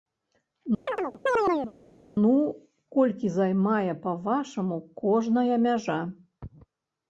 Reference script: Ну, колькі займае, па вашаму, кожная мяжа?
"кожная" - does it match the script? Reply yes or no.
yes